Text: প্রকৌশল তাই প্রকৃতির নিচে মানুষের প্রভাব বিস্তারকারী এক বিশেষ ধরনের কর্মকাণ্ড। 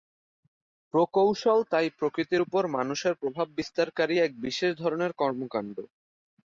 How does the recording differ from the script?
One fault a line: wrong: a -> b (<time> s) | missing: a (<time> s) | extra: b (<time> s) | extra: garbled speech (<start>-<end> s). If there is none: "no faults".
wrong: নিচে -> উপর (2.4 s)